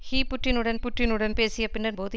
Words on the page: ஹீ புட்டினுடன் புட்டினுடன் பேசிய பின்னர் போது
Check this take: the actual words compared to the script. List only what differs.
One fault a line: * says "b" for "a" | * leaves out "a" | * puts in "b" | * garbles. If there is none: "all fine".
all fine